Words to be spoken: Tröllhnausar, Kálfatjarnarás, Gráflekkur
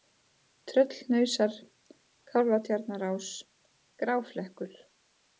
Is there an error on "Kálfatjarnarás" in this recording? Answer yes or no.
no